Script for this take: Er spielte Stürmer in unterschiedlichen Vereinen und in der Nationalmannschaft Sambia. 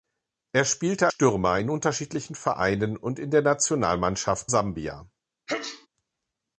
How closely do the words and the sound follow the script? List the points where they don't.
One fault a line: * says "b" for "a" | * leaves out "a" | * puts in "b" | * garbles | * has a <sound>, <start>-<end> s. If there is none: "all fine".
* has a sneeze, 5.5-5.9 s